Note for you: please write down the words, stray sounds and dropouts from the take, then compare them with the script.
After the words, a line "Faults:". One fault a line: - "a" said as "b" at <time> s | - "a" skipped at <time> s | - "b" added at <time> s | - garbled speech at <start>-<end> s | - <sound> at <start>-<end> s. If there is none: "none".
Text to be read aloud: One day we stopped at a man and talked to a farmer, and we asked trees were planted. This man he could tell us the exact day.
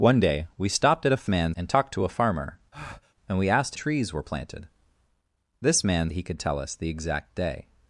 One day we stopped at a man and talked to a farmer, and we asked trees were planted. This man he could tell us the exact day.
Faults:
- breath at 2.7-3.1 s